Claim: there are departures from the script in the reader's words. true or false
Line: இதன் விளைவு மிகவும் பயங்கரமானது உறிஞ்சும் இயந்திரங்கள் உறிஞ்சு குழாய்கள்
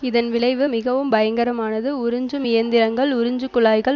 false